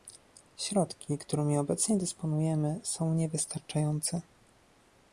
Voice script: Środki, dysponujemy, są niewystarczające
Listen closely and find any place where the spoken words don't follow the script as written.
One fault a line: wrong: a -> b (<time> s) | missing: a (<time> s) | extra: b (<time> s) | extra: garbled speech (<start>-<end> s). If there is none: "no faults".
extra: którymi obecnie (1.2 s)